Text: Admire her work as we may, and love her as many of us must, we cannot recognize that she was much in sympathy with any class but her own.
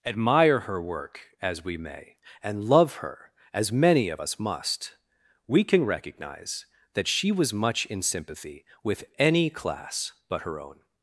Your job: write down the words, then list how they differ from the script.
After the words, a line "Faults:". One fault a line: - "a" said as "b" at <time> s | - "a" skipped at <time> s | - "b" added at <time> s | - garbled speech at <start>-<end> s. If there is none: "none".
Admire her work as we may, and love her as many of us must, we can recognize that she was much in sympathy with any class but her own.
Faults:
- "cannot" said as "can" at 5.6 s